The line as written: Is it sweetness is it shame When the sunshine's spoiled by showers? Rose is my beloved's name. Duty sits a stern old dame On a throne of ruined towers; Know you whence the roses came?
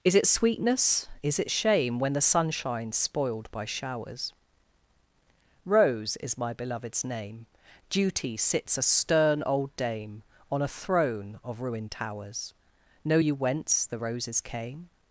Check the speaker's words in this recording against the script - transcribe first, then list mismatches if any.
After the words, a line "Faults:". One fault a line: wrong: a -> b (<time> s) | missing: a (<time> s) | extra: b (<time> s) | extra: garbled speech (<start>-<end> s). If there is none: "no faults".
Is it sweetness is it shame When the sunshine's spoiled by showers? Rose is my beloved's name. Duty sits a stern old dame On a throne of ruined towers; Know you whence the roses came?
Faults:
no faults